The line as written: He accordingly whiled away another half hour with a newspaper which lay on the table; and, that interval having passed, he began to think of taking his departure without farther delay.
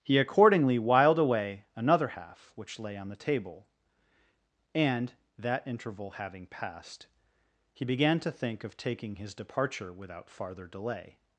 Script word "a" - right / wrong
wrong